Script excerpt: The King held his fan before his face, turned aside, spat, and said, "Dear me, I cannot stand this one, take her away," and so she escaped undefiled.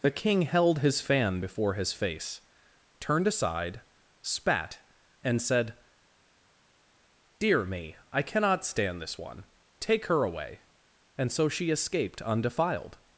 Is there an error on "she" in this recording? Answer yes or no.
no